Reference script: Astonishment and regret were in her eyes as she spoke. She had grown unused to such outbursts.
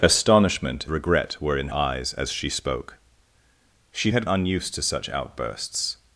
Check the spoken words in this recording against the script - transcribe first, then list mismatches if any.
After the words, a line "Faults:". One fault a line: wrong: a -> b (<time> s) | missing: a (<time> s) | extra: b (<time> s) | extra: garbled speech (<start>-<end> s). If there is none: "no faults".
Astonishment regret were in eyes as she spoke. She had unused to such outbursts.
Faults:
missing: and (0.9 s)
missing: her (1.7 s)
missing: grown (4.2 s)